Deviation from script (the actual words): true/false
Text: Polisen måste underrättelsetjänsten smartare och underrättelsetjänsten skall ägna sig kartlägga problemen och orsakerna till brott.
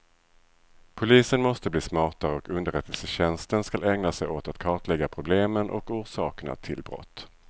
true